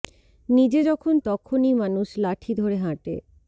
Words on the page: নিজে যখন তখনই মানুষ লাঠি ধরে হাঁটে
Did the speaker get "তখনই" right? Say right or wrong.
right